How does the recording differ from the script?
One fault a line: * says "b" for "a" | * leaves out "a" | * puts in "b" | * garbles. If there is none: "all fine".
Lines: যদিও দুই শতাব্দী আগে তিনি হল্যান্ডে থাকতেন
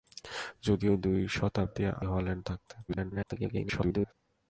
* leaves out "আগে তিনি"
* garbles